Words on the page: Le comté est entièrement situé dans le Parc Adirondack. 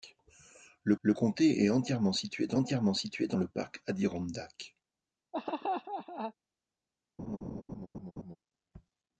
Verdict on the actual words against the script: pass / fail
fail